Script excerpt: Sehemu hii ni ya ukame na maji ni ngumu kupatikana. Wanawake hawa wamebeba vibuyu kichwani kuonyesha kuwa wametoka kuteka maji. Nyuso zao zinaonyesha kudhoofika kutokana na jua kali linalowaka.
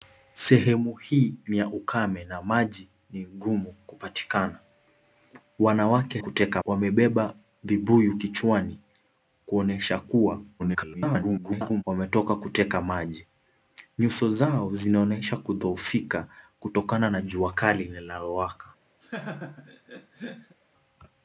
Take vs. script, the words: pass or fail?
fail